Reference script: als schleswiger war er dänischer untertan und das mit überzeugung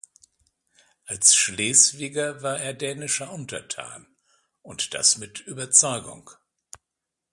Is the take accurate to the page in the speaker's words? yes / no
yes